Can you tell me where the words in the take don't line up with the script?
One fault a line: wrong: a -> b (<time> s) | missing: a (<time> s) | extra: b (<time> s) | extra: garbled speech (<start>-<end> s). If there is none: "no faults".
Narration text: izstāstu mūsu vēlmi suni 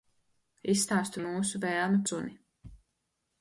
no faults